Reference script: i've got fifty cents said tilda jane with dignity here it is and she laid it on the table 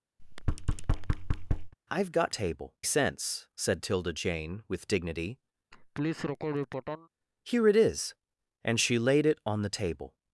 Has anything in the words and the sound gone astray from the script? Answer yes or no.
yes